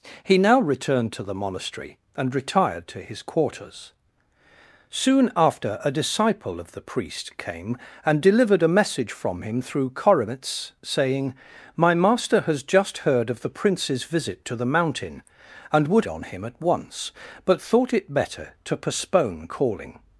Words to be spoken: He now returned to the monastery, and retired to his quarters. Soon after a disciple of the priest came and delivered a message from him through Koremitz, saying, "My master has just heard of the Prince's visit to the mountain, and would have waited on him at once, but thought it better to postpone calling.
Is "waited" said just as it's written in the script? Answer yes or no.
no